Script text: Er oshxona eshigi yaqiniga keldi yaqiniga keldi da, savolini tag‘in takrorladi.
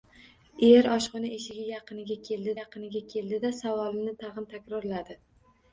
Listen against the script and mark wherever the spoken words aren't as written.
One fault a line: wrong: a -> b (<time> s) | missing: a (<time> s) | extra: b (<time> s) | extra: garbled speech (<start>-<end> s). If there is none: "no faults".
no faults